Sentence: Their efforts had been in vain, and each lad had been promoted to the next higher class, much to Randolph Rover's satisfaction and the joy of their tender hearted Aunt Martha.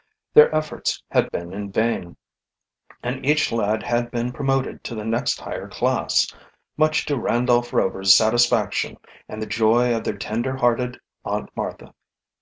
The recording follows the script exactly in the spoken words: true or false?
true